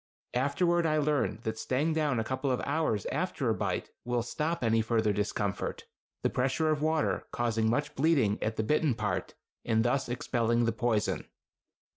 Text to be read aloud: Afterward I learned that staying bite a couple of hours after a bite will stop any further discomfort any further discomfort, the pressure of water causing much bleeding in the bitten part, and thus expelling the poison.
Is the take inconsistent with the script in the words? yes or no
yes